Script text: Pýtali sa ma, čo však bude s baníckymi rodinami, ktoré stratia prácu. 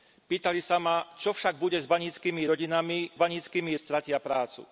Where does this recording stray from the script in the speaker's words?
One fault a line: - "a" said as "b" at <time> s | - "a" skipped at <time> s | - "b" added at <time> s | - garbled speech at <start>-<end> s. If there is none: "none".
- "ktoré" said as "baníckymi" at 3.1 s